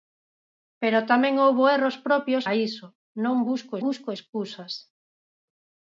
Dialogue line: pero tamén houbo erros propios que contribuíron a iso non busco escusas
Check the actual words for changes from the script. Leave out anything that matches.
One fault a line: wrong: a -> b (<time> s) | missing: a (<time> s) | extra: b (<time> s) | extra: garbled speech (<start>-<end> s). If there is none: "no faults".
missing: que contribuíron (2.4 s)
extra: busco (3.9 s)